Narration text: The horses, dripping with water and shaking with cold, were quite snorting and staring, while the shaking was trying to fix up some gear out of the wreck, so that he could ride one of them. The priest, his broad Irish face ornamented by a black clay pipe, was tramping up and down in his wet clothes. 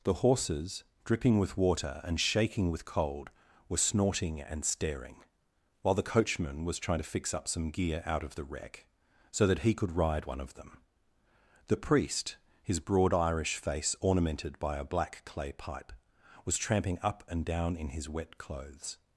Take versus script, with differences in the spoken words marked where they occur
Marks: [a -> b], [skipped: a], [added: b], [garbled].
The horses, dripping with water and shaking with cold, were [skipped: quite] snorting and staring, while the [shaking -> coachman] was trying to fix up some gear out of the wreck, so that he could ride one of them. The priest, his broad Irish face ornamented by a black clay pipe, was tramping up and down in his wet clothes.